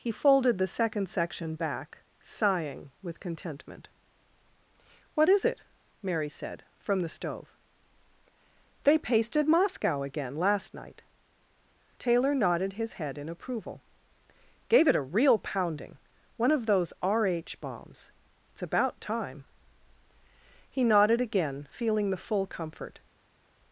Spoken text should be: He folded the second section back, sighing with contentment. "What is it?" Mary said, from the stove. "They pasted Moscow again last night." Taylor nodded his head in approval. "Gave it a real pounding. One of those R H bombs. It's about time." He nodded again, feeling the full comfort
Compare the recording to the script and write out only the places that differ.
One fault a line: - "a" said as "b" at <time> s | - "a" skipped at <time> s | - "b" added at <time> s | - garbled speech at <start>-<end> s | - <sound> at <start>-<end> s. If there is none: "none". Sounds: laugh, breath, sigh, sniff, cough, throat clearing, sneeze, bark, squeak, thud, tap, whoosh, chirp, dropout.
none